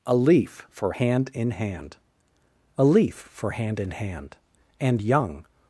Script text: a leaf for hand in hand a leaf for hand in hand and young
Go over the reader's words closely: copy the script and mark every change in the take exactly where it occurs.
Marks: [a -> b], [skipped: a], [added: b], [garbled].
a leaf for hand in hand a leaf for hand in hand and young